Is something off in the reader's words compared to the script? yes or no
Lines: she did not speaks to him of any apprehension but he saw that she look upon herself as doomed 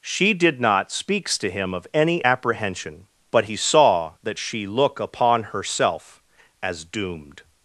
no